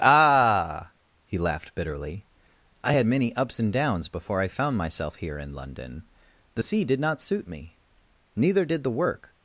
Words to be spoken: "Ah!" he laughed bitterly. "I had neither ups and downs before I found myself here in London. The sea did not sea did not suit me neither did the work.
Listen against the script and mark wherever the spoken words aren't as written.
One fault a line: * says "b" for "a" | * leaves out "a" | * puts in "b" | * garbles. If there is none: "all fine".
* says "many" for "neither"
* leaves out "sea did not"